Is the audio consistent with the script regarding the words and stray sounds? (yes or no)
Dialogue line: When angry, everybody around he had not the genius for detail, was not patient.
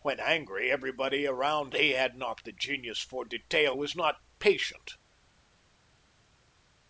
yes